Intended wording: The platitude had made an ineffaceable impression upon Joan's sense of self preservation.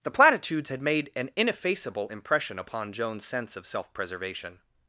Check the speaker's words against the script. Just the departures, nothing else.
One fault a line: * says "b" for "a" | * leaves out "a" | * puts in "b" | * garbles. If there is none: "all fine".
* says "platitudes" for "platitude"